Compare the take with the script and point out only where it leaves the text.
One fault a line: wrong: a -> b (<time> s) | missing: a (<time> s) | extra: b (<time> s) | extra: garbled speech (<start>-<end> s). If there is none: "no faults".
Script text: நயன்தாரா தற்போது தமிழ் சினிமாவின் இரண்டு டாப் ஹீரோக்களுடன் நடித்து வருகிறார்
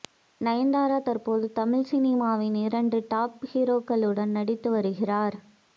no faults